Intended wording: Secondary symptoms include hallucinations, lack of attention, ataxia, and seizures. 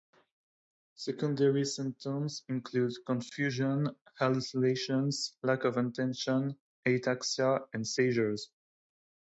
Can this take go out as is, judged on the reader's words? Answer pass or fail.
fail